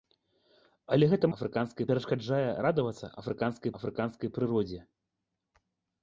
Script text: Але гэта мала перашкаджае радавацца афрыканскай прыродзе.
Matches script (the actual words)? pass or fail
fail